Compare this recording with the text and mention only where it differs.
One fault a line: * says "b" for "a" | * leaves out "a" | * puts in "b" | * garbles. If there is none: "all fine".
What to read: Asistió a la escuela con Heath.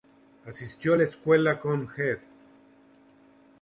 all fine